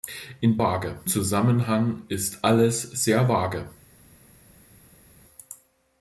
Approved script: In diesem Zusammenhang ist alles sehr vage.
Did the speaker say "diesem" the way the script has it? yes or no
no